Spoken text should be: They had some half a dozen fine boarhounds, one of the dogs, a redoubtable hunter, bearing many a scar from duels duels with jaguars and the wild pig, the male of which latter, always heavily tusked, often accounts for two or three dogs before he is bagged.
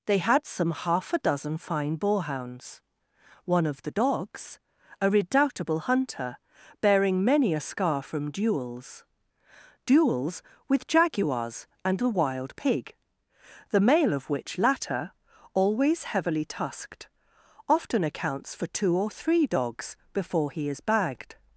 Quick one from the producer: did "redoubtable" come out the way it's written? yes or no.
yes